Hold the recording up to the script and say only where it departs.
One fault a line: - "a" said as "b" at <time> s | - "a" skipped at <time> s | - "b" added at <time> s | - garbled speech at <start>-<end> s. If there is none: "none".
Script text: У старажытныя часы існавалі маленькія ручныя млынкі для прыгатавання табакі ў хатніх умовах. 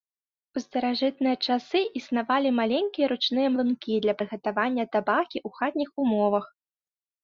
none